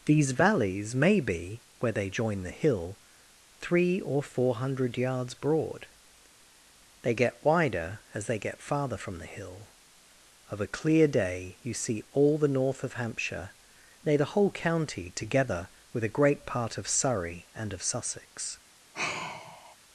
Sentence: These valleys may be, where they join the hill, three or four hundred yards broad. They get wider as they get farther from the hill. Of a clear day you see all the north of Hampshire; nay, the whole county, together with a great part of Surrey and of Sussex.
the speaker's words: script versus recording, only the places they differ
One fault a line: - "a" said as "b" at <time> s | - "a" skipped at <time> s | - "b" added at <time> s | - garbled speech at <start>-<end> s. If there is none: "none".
none